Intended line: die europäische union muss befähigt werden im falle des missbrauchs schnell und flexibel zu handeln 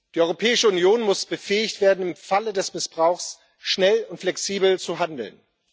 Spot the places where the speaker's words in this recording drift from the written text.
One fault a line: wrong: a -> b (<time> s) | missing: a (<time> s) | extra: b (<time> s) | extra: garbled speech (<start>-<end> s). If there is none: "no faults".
no faults